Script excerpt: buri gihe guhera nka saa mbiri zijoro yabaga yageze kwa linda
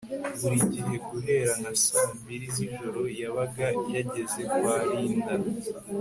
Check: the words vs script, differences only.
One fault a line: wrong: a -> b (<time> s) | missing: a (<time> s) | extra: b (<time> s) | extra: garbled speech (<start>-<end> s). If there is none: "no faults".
no faults